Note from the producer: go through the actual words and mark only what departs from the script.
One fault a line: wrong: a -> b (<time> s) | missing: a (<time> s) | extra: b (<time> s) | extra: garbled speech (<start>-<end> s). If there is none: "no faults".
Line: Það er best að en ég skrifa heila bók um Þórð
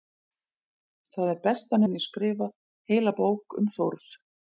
no faults